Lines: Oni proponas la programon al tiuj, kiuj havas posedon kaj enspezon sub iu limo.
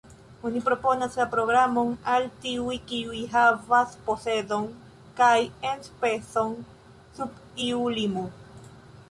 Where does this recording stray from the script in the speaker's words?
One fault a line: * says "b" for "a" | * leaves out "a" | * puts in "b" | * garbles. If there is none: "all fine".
all fine